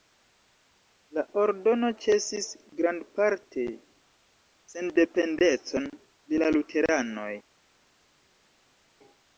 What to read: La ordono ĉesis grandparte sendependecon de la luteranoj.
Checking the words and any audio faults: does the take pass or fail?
pass